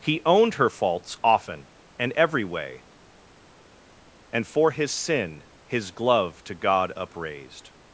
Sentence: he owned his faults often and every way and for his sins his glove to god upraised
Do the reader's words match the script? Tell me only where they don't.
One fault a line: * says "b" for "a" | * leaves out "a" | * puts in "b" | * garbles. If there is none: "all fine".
* says "her" for "his"
* says "sin" for "sins"